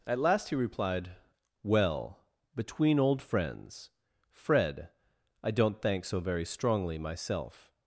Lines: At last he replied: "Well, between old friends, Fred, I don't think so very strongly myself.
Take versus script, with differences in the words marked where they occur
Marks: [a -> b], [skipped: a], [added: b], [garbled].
At last he replied: "Well, between old friends, Fred, I don't [think -> thank] so very strongly myself.